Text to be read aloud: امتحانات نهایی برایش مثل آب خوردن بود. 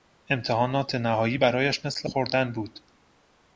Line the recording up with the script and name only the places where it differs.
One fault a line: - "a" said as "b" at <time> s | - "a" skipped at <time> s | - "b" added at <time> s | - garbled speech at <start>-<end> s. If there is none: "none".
- "آب" skipped at 2.1 s